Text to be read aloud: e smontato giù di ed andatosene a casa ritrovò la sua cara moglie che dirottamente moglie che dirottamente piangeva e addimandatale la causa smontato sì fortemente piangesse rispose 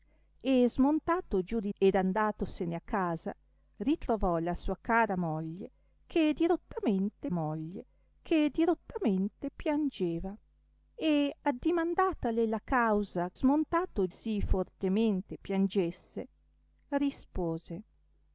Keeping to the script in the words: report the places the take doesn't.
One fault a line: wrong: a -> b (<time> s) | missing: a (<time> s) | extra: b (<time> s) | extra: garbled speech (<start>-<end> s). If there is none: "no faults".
no faults